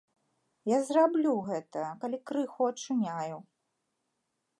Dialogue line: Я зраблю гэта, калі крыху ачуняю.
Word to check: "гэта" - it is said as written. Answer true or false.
true